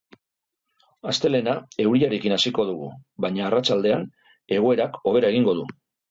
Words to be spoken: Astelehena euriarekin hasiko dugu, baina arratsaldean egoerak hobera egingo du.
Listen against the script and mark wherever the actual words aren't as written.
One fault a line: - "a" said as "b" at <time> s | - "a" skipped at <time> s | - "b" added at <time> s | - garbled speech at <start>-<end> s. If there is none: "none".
none